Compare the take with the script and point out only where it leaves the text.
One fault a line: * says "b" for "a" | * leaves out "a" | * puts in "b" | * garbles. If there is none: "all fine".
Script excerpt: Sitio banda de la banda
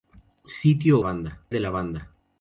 all fine